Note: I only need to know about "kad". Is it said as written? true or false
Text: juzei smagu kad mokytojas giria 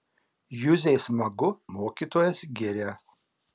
false